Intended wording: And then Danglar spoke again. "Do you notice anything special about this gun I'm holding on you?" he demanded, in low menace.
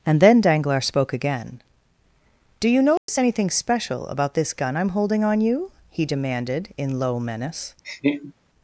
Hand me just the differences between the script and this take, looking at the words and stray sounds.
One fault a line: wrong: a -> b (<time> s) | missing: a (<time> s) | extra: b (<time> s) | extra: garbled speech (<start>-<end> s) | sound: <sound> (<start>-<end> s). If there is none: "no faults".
sound: dropout (3.0-3.1 s)
sound: laugh (7.8-8.3 s)